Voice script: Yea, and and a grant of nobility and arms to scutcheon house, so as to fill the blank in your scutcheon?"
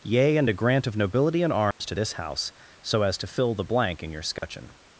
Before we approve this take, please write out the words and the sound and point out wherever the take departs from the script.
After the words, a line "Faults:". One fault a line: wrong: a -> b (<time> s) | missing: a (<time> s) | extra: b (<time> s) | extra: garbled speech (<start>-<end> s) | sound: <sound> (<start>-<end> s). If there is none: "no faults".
Yea, and a grant of nobility and arms to this house, so as to fill the blank in your scutcheon?"
Faults:
missing: and (0.5 s)
sound: dropout (1.7-1.8 s)
wrong: scutcheon -> this (1.9 s)
sound: dropout (4.4-4.4 s)